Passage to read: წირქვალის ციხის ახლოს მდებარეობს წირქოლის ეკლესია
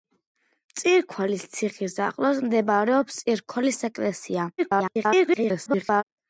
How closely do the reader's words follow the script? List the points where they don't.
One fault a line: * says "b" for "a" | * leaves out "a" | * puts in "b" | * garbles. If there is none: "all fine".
* garbles